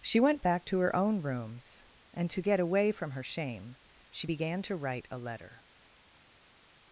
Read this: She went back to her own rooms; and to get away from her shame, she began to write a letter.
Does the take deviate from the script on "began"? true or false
false